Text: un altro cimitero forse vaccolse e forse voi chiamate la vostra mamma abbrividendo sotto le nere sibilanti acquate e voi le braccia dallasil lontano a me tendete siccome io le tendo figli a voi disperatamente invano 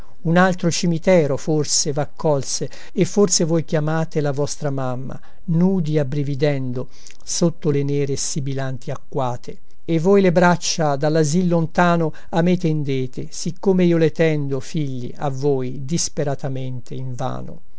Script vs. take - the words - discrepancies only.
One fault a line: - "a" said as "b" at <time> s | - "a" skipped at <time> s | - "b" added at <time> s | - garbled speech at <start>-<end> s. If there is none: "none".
- "nudi" added at 5.5 s